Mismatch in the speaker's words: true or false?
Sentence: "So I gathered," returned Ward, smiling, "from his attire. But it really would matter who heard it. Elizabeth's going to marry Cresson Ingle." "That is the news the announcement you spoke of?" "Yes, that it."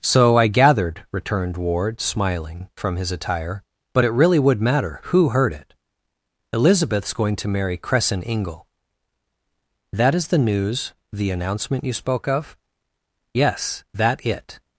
false